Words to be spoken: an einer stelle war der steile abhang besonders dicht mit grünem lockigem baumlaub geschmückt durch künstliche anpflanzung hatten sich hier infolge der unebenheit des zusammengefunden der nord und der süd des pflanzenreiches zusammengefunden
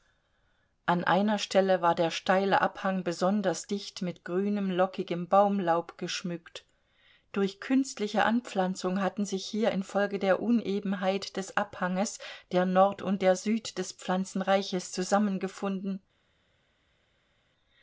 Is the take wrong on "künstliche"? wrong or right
right